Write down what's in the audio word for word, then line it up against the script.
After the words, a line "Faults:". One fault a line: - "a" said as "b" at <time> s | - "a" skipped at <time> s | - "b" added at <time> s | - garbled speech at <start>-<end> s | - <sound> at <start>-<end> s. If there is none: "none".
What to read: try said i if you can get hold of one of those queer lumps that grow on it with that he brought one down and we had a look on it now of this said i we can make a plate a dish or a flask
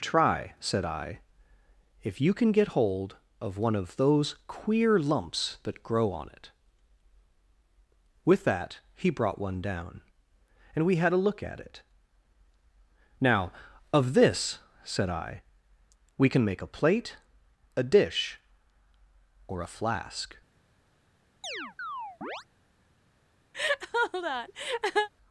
try said i if you can get hold of one of those queer lumps that grow on it with that he brought one down and we had a look at it now of this said i we can make a plate a dish or a flask
Faults:
- "on" said as "at" at 11.4 s
- chirp at 21.4-22.5 s
- laugh at 23.5-25.1 s